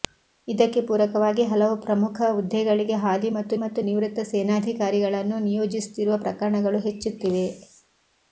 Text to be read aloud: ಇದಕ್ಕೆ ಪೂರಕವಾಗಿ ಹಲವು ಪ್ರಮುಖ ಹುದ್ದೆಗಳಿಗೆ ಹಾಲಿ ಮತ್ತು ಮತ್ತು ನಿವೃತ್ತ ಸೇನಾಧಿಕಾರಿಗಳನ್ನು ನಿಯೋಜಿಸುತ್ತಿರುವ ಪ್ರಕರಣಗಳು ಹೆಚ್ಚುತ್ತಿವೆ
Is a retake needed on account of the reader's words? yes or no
no